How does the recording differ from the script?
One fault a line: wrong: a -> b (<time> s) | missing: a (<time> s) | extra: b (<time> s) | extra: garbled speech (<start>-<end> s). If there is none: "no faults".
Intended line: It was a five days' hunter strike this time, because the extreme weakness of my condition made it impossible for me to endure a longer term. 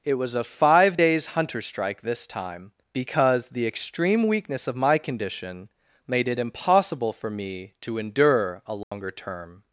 no faults